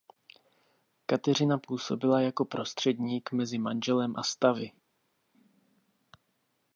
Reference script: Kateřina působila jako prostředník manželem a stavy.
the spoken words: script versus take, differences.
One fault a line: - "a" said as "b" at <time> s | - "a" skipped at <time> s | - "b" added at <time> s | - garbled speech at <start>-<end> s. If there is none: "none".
- "mezi" added at 3.3 s